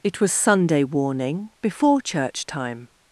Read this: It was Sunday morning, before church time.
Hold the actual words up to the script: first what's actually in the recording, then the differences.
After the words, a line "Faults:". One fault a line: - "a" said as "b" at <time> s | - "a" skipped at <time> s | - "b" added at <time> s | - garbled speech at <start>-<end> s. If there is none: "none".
It was Sunday warning, before church time.
Faults:
- "morning" said as "warning" at 0.8 s